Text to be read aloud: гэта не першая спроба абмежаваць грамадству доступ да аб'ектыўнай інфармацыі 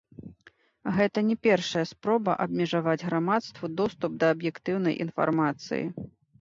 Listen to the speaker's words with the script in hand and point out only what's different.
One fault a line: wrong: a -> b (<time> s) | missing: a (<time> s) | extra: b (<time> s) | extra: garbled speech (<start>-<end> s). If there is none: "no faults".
no faults